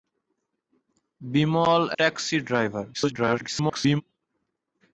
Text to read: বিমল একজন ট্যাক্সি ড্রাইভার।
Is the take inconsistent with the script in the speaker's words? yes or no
yes